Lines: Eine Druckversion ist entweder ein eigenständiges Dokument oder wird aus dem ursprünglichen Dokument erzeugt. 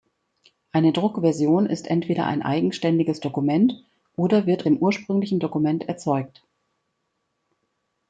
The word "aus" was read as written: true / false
false